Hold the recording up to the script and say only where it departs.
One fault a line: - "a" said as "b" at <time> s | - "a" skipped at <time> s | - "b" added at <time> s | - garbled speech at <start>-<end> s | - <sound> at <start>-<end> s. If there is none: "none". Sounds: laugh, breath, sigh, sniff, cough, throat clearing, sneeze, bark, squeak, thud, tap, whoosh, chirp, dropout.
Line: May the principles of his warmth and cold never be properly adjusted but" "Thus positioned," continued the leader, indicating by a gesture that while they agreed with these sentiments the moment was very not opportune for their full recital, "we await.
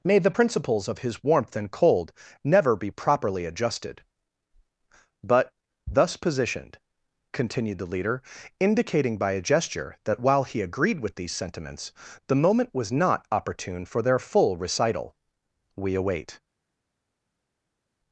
- "they" said as "he" at 10.4 s
- "very" skipped at 12.9 s